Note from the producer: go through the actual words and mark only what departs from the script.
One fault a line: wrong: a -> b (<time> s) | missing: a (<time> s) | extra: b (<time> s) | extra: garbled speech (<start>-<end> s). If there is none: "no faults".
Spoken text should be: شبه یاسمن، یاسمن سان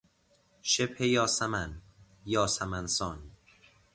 no faults